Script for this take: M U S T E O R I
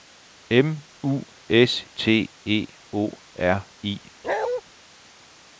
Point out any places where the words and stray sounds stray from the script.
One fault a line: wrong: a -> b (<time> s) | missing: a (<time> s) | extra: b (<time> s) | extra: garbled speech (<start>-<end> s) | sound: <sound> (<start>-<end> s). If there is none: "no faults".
sound: bark (4.2-4.6 s)